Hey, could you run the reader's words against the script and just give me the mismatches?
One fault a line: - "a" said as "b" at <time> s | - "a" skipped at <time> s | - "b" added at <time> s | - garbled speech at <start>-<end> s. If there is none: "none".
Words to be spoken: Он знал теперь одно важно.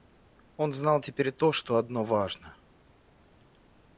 - "то что" added at 1.3 s